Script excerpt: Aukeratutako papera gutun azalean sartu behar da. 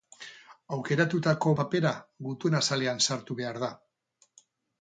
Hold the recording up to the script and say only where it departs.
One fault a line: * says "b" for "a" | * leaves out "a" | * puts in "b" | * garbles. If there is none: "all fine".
all fine